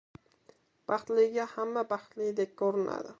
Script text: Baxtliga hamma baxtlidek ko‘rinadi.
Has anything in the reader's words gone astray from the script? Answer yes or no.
no